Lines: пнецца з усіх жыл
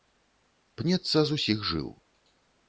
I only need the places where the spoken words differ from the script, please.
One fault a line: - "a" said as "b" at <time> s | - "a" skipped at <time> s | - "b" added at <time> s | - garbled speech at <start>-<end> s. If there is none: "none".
none